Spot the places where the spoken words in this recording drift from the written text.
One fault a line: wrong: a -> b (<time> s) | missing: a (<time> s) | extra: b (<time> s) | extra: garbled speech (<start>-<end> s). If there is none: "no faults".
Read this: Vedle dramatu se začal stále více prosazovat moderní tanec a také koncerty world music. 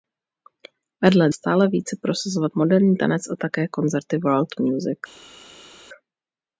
missing: dramatu se začal (1.3 s)